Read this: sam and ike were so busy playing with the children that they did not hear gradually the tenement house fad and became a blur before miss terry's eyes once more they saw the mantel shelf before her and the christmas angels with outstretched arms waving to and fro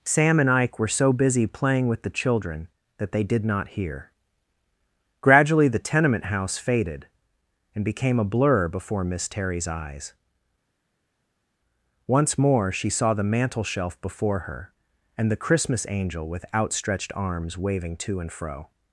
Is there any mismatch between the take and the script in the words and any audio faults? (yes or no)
yes